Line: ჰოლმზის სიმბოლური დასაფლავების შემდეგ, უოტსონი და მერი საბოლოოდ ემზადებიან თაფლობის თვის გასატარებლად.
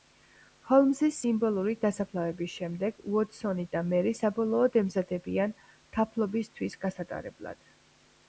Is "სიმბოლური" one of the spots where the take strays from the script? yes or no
no